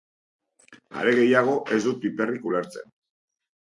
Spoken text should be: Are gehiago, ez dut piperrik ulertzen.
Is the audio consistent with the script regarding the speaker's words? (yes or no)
yes